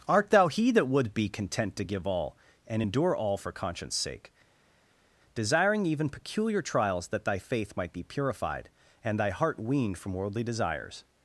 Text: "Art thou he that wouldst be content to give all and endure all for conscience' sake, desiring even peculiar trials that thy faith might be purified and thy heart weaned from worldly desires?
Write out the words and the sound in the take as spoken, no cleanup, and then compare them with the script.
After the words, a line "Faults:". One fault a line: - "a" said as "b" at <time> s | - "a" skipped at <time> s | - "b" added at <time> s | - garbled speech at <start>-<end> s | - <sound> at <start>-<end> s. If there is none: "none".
"Art thou he that would be content to give all and endure all for conscience' sake, desiring even peculiar trials that thy faith might be purified and thy heart weaned from worldly desires?
Faults:
- "wouldst" said as "would" at 0.9 s